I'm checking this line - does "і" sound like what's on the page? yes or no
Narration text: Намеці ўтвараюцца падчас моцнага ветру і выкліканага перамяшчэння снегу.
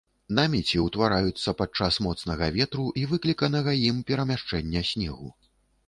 yes